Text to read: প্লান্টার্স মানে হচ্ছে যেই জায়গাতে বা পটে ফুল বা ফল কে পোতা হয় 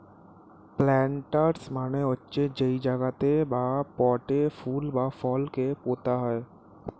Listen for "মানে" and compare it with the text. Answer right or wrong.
right